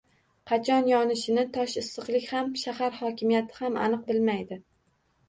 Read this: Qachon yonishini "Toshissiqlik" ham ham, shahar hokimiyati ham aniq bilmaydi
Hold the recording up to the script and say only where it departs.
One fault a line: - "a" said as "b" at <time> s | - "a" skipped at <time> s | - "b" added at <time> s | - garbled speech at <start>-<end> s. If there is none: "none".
- "ham" skipped at 2.5 s